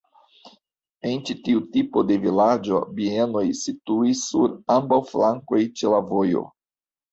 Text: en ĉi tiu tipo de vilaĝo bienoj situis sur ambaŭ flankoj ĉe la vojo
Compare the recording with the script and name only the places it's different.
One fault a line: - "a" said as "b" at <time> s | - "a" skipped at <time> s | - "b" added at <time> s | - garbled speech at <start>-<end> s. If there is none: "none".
none